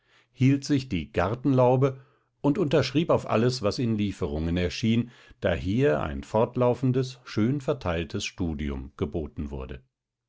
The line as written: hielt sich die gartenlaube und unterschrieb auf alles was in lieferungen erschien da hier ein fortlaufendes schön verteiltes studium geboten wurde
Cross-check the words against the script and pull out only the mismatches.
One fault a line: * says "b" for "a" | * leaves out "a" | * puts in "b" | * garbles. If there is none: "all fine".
all fine